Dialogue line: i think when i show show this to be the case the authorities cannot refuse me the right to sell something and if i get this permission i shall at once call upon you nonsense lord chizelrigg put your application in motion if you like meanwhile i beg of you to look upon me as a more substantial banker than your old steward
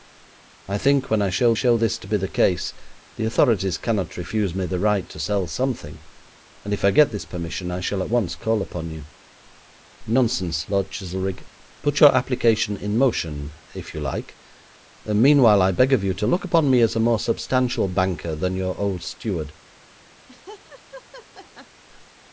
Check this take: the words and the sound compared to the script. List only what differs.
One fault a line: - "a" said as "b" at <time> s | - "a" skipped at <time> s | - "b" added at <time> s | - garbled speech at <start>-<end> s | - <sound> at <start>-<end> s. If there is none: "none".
- laugh at 20.3-21.8 s